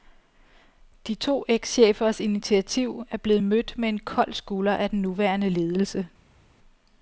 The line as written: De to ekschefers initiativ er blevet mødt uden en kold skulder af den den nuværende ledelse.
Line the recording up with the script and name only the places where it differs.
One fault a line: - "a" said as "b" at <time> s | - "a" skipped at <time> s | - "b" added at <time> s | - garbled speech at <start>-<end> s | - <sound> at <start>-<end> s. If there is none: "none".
- "uden" said as "med" at 3.8 s
- "den" skipped at 5.0 s